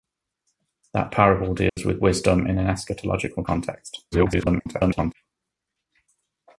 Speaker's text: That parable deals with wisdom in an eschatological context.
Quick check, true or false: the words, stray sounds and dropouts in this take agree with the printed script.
false